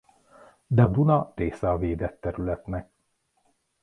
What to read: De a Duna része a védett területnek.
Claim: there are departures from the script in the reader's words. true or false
false